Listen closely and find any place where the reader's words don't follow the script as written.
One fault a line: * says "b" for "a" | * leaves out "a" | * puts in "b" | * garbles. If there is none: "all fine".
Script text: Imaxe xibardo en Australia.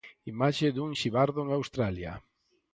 * puts in "dun"